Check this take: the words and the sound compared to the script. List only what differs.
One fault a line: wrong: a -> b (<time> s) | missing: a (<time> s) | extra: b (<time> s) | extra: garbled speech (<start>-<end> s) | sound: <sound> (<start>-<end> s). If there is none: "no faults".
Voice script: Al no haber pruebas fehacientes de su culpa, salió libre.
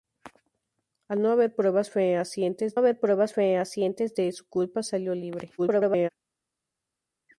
extra: haber pruebas fehacientes (2.7 s)
extra: garbled speech (5.6-6.1 s)